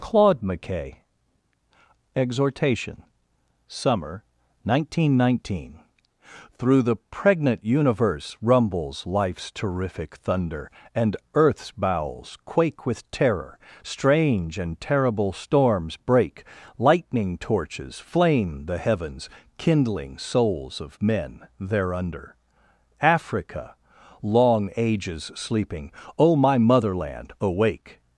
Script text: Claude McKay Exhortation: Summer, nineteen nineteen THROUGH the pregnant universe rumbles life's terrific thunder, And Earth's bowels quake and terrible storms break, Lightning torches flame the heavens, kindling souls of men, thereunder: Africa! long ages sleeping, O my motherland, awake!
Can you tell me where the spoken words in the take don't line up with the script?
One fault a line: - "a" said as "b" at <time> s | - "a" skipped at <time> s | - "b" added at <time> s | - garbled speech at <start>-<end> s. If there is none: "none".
- "with terror strange" added at 12.9 s